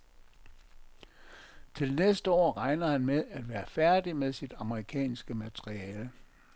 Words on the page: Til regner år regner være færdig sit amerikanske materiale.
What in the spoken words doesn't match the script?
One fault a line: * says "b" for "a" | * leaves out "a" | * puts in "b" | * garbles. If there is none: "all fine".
* says "næste" for "regner"
* puts in "han med at"
* puts in "med"